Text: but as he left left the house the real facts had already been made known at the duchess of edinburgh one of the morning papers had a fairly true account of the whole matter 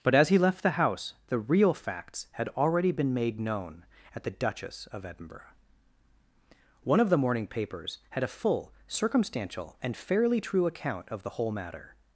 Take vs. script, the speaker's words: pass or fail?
fail